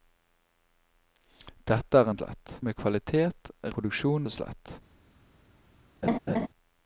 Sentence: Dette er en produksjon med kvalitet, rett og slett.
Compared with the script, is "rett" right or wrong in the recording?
wrong